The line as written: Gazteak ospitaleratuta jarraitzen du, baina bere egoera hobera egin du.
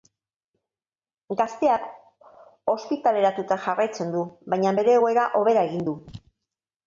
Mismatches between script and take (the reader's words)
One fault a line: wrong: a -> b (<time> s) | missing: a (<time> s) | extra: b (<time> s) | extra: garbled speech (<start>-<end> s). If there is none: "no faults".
no faults